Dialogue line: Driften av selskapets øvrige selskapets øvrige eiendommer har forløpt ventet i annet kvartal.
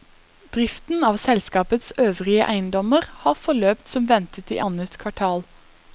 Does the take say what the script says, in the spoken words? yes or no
no